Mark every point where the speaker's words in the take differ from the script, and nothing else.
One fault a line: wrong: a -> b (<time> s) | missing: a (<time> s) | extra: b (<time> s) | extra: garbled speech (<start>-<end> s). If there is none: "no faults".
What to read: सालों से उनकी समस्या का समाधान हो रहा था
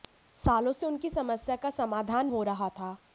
no faults